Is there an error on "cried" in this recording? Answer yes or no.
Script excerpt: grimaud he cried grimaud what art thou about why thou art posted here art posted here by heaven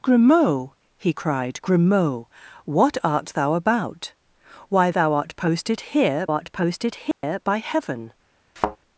no